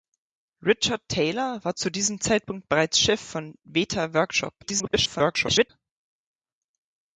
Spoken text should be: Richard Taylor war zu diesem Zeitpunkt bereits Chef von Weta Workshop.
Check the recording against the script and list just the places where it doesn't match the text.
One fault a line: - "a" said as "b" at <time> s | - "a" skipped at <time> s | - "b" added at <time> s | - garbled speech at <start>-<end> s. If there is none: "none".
- garbled speech at 4.6-5.7 s